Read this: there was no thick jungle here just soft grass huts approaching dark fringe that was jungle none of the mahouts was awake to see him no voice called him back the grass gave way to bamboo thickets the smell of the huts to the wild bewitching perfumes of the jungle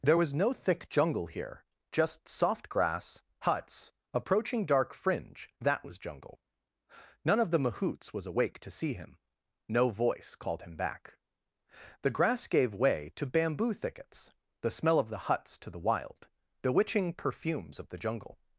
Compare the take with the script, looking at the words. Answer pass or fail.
pass